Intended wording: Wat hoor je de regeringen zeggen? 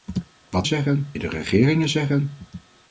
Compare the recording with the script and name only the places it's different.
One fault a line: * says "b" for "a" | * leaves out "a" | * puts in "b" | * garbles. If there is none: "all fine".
* says "zeggen" for "hoor"